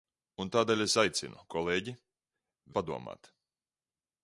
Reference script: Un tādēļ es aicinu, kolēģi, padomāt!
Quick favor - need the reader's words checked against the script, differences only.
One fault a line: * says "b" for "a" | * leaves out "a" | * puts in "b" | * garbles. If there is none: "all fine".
all fine